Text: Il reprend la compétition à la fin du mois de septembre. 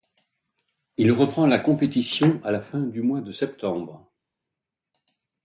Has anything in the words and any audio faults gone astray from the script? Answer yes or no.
no